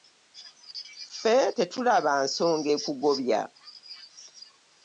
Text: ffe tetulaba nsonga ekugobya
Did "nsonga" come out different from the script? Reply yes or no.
no